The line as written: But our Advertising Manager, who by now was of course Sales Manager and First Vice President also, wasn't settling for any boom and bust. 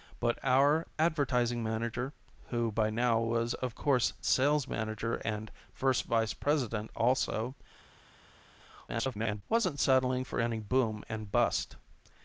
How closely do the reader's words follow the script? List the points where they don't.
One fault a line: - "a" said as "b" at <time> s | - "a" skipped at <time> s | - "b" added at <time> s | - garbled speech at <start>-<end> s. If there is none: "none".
- garbled speech at 8.9-9.4 s